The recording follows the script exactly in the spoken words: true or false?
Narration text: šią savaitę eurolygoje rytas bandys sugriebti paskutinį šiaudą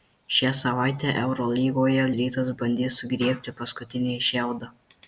true